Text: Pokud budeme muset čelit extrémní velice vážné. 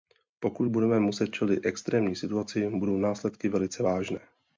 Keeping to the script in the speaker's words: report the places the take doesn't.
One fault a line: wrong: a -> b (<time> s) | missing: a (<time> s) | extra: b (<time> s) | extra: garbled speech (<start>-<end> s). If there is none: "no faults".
extra: situaci budou následky (2.2 s)